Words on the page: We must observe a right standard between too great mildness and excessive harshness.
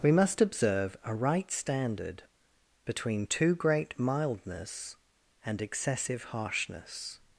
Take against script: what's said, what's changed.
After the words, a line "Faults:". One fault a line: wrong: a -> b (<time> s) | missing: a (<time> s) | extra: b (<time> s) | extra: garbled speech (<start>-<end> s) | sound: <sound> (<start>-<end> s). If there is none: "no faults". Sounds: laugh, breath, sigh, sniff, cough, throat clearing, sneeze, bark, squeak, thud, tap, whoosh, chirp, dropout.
We must observe a right standard between too great mildness and excessive harshness.
Faults:
no faults